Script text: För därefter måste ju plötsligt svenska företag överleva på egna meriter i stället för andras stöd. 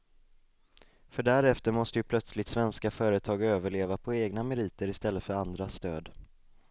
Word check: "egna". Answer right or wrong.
right